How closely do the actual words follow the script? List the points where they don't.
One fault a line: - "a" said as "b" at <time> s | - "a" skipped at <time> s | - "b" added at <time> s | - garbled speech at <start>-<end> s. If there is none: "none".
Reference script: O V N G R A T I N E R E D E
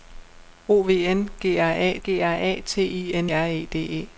- "G R A" added at 2.0 s
- "E" skipped at 3.3 s